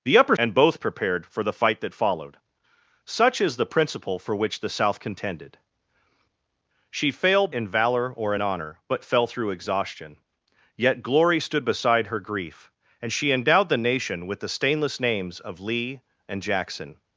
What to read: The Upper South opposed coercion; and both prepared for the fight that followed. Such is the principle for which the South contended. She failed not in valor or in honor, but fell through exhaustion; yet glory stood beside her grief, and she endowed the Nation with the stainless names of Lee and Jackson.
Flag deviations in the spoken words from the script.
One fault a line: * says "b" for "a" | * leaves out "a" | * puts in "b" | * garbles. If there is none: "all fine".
* leaves out "South opposed coercion"
* leaves out "not"